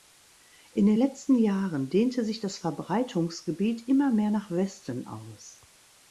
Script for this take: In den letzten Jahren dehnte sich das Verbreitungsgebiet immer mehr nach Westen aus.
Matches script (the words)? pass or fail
pass